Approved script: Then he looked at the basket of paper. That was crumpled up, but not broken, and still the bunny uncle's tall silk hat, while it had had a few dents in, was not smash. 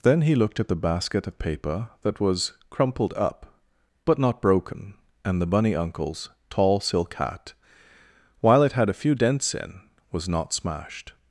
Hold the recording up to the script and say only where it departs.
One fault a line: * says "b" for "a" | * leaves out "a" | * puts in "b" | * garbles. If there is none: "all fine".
* leaves out "still"
* leaves out "had"
* says "smashed" for "smash"